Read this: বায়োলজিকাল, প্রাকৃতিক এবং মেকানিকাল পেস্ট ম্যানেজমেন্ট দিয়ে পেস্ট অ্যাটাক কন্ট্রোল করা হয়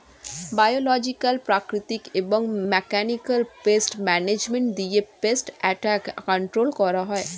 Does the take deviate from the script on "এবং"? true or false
false